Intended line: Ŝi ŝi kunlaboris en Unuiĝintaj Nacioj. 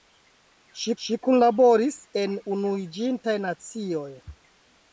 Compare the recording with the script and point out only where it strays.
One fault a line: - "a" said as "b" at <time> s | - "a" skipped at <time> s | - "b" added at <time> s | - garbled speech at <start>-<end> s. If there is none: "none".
none